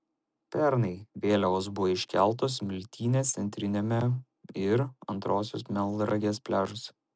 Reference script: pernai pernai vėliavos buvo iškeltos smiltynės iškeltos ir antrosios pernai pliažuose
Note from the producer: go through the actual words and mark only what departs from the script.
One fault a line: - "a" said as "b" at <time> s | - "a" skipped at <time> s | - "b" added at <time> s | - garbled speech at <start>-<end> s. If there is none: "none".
- "pernai" skipped at 0.9 s
- "iškeltos" said as "centriniame" at 3.4 s
- "pernai" said as "melnragės" at 5.8 s